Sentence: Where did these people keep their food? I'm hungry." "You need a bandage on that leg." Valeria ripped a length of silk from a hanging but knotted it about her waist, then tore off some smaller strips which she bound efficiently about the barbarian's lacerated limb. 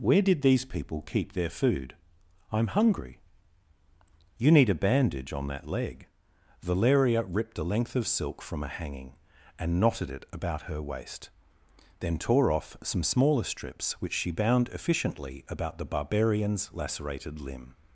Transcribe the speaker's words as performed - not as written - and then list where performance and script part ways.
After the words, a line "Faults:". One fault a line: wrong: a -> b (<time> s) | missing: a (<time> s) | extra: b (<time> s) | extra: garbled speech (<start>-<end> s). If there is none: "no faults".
Where did these people keep their food? I'm hungry." "You need a bandage on that leg." Valeria ripped a length of silk from a hanging and knotted it about her waist, then tore off some smaller strips which she bound efficiently about the barbarian's lacerated limb.
Faults:
wrong: but -> and (9.6 s)